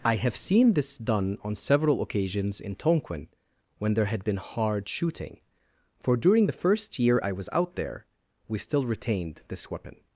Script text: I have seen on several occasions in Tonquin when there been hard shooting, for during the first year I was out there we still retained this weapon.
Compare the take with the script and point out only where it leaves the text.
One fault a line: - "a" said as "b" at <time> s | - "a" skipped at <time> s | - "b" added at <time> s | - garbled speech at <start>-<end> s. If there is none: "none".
- "this done" added at 0.7 s
- "had" added at 4.1 s